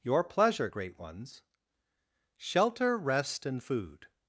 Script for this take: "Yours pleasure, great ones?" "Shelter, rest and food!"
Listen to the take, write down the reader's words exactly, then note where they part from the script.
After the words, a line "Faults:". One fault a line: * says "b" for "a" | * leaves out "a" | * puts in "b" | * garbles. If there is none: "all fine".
"Your pleasure, great ones?" "Shelter, rest and food!"
Faults:
* says "Your" for "Yours"